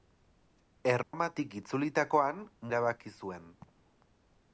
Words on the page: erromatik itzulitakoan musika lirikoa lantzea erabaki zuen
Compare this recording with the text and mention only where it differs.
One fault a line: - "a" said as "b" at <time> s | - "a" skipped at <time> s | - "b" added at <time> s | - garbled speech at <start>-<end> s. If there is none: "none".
- "musika lirikoa lantzea" skipped at 2.4 s